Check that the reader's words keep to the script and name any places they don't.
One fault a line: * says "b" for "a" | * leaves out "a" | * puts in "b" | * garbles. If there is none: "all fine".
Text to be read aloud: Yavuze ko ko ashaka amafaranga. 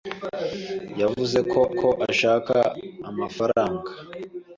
all fine